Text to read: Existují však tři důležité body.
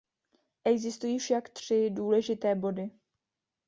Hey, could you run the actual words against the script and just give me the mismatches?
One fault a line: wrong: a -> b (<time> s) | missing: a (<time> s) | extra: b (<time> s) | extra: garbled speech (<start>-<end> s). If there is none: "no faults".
no faults